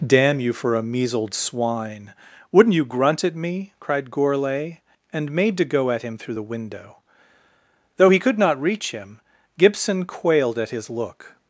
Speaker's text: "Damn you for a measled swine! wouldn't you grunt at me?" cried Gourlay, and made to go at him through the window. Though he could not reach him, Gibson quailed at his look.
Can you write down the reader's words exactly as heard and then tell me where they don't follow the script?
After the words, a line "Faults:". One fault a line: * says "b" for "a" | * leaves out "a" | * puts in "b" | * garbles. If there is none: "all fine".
"Damn you for a measled swine! wouldn't you grunt at me?" cried Gourlay, and made to go at him through the window. Though he could not reach him, Gibson quailed at his look.
Faults:
all fine